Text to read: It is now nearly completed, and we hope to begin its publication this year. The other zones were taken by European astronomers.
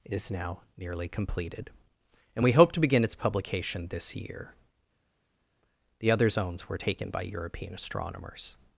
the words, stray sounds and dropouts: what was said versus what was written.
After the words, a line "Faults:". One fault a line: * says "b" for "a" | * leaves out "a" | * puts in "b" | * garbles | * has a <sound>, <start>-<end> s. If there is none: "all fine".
is now nearly completed, and we hope to begin its publication this year. The other zones were taken by European astronomers.
Faults:
* leaves out "It"